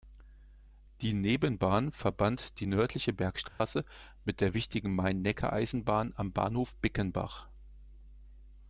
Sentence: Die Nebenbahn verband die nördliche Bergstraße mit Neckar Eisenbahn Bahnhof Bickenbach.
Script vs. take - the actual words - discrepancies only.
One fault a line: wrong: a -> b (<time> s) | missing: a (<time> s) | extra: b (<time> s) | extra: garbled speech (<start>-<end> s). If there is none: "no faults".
extra: der wichtigen Main (4.4 s)
extra: am (6.1 s)